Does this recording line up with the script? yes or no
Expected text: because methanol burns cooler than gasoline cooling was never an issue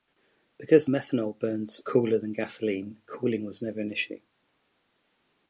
yes